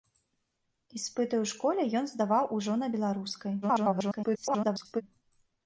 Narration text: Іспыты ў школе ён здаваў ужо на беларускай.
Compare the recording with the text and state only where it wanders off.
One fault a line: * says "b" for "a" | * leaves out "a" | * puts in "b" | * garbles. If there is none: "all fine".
* garbles